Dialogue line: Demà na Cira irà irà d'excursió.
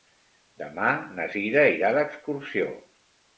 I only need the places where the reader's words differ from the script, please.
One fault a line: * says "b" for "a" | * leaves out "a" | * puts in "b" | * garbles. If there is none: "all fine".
* leaves out "irà"